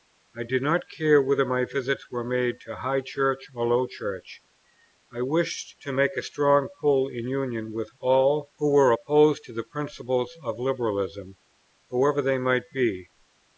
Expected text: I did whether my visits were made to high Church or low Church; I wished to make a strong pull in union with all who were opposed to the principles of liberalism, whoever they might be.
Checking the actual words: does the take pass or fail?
fail